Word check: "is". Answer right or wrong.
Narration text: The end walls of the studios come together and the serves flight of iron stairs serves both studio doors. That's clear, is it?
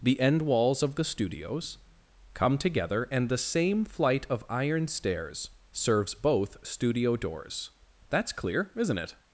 wrong